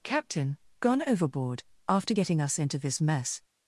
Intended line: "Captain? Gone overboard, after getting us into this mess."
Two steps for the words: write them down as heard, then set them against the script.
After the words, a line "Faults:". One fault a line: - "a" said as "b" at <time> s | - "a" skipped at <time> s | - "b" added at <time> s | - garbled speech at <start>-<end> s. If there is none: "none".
"Captain? Gone overboard, after getting us into this mess."
Faults:
none